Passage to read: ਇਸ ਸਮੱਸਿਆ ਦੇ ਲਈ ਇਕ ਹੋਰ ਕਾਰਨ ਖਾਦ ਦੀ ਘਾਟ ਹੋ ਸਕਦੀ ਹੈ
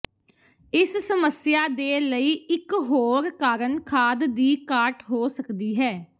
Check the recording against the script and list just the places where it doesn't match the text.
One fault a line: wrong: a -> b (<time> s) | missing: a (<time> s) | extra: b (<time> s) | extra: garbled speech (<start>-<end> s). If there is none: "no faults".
no faults